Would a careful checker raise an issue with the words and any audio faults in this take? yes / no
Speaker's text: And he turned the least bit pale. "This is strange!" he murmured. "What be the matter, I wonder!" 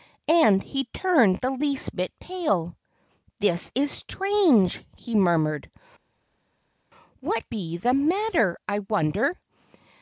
no